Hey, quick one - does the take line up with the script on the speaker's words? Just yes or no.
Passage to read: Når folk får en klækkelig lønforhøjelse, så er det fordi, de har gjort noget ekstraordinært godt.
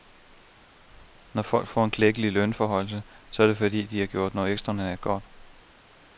yes